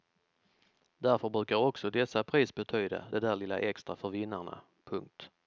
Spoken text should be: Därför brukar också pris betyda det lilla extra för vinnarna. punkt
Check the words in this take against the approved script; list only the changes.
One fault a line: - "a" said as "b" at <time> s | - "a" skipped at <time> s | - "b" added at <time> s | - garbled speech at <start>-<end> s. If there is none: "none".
- "dessa" added at 1.9 s
- "där" added at 3.2 s